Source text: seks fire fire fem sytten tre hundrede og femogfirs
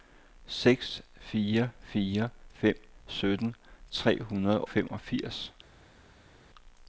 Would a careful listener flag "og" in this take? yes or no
yes